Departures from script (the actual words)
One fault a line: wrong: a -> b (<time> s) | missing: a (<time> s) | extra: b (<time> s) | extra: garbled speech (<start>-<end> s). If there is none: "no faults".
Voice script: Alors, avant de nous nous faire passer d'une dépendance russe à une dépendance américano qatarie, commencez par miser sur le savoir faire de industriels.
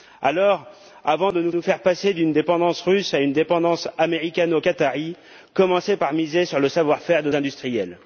no faults